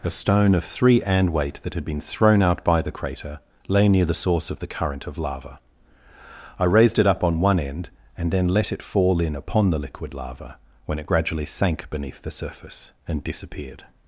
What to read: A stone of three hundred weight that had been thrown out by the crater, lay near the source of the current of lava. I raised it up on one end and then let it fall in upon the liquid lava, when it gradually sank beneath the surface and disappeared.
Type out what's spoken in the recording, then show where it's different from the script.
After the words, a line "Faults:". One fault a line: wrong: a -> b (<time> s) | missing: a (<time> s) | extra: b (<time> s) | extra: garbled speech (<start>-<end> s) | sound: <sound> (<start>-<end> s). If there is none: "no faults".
A stone of three and weight that had been thrown out by the crater, lay near the source of the current of lava. I raised it up on one end and then let it fall in upon the liquid lava, when it gradually sank beneath the surface and disappeared.
Faults:
wrong: hundred -> and (1.0 s)